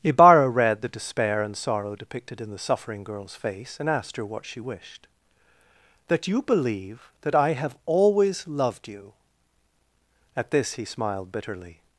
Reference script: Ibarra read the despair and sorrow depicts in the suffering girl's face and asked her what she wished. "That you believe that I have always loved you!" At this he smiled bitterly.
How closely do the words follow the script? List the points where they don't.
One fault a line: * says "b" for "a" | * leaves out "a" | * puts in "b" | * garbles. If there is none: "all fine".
* says "depicted" for "depicts"